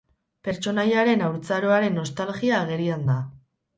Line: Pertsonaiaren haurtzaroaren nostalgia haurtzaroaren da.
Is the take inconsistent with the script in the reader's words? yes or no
yes